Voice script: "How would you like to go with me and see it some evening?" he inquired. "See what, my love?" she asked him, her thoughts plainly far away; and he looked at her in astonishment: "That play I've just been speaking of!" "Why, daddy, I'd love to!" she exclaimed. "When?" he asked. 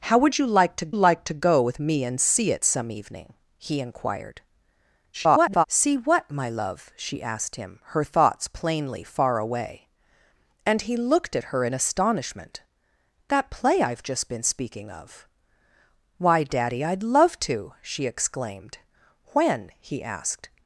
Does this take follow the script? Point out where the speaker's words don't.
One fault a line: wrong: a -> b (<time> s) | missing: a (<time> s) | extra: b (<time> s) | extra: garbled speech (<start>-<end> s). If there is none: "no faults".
extra: like to (0.9 s)
extra: garbled speech (5.1-5.6 s)